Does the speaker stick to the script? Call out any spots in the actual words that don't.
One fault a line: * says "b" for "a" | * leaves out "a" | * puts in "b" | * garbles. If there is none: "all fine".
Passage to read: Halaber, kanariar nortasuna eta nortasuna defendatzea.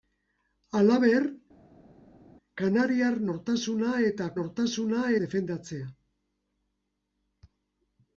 all fine